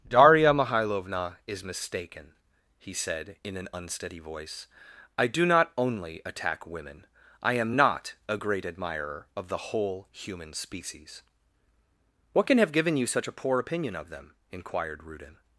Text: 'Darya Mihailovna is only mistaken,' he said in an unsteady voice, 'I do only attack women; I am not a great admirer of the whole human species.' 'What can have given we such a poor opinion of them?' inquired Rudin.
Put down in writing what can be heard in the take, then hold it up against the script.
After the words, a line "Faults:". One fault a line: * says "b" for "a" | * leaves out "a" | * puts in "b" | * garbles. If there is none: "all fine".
'Darya Mihailovna is mistaken,' he said in an unsteady voice, 'I do not only attack women; I am not a great admirer of the whole human species.' 'What can have given you such a poor opinion of them?' inquired Rudin.
Faults:
* leaves out "only"
* puts in "not"
* says "you" for "we"